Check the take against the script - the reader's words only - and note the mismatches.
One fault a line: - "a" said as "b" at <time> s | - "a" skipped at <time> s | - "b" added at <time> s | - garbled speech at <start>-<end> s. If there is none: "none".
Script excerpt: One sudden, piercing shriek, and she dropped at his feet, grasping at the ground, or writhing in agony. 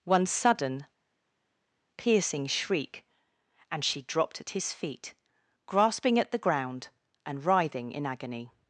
- "or" said as "and" at 7.3 s